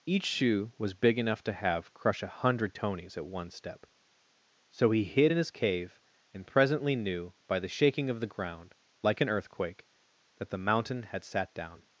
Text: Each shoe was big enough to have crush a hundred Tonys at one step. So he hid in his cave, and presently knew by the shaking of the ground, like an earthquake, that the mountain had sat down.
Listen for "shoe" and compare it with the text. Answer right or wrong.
right